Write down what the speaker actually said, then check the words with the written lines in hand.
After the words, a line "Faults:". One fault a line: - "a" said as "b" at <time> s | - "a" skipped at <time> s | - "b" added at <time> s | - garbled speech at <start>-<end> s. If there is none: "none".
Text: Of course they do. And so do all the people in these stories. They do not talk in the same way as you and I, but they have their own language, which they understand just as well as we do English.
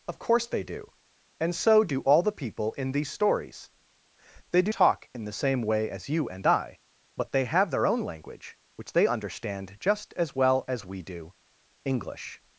Of course they do. And so do all the people in these stories. They do talk in the same way as you and I, but they have their own language, which they understand just as well as we do English.
Faults:
- "not" skipped at 4.7 s